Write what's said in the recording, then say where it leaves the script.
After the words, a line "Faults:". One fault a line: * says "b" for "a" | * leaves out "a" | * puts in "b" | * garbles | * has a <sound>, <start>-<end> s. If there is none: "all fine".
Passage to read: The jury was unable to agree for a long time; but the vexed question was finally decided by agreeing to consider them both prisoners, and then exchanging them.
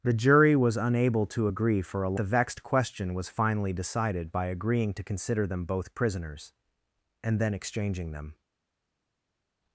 The jury was unable to agree for a the vexed question was finally decided by agreeing to consider them both prisoners, and then exchanging them.
Faults:
* leaves out "long time but"